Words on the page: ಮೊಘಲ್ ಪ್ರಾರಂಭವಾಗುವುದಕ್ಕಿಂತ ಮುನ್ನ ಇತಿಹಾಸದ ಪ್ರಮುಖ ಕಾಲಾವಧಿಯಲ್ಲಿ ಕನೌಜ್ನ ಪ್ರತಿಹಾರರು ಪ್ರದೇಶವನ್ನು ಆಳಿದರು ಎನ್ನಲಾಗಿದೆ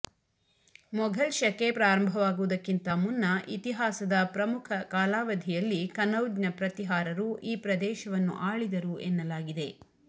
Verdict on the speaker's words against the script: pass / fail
fail